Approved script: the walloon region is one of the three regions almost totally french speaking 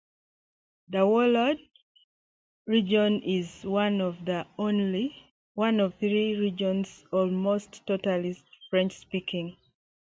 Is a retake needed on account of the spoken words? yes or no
yes